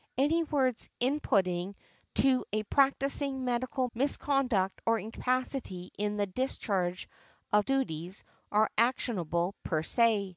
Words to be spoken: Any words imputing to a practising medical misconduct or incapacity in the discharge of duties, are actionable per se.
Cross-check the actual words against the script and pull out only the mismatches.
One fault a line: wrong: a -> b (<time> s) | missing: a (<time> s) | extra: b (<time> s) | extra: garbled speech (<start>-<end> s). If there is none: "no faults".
no faults